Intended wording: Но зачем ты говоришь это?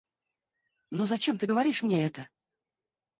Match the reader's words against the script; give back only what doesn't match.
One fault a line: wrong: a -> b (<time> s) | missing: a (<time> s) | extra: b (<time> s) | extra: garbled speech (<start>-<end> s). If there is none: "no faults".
extra: мне (1.8 s)